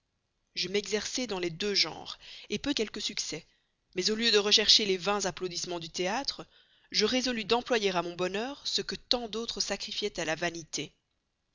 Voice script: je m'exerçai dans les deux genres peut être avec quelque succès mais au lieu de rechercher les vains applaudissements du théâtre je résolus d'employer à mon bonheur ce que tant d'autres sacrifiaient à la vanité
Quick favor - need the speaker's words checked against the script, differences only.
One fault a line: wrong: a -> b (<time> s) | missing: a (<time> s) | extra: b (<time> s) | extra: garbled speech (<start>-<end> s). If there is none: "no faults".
missing: être avec (2.7 s)